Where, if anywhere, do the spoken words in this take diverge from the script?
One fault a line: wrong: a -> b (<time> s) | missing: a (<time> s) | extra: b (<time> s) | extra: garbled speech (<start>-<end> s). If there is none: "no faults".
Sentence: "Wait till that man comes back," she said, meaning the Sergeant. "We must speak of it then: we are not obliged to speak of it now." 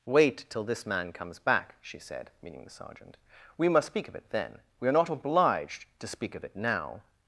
wrong: that -> this (0.6 s)